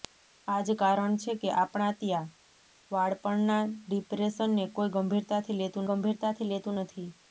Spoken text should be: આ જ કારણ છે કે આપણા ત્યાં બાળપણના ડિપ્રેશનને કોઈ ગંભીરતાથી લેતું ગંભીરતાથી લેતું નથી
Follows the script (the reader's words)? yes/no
yes